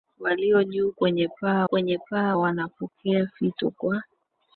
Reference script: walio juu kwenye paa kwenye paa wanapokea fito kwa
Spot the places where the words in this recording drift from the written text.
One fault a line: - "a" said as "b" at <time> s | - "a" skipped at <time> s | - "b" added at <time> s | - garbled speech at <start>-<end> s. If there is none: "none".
none